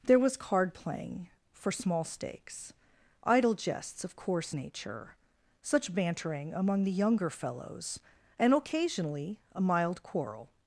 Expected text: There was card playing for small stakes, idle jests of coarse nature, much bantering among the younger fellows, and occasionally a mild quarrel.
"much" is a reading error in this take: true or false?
true